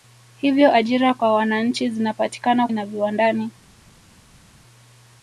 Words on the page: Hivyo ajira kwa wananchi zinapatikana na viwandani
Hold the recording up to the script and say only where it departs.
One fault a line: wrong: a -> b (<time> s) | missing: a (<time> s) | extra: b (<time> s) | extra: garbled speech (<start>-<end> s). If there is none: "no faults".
no faults